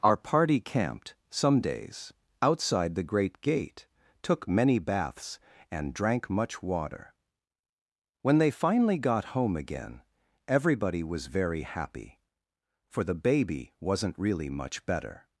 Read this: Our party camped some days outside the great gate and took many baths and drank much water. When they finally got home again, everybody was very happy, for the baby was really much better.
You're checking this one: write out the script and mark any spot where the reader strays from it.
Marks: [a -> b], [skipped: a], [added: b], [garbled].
Our party camped some days outside the great gate [skipped: and] took many baths and drank much water. When they finally got home again, everybody was very happy, for the baby [was -> wasn't] really much better.